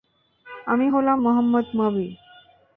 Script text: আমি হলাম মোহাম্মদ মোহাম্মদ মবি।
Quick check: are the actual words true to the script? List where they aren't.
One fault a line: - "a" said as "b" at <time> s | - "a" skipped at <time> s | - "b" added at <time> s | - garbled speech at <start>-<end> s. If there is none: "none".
- "মোহাম্মদ" skipped at 1.7 s